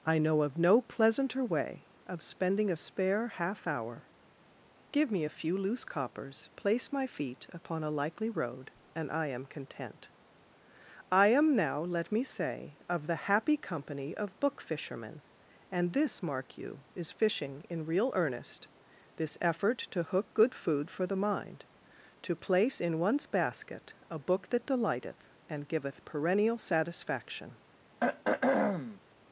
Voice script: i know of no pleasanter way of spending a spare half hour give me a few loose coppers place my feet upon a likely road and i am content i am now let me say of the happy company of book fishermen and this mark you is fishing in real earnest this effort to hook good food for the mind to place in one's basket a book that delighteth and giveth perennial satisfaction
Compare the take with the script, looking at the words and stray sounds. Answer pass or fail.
fail